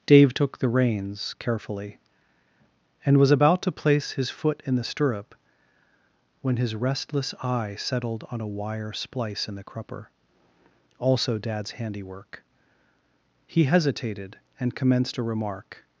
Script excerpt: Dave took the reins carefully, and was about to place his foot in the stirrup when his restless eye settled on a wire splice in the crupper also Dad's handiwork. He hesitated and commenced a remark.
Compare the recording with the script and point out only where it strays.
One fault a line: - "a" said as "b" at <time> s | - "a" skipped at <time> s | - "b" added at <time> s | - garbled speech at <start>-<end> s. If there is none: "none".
none